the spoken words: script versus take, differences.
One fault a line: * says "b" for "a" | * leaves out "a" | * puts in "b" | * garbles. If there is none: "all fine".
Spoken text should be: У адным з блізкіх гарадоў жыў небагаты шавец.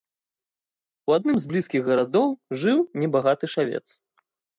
all fine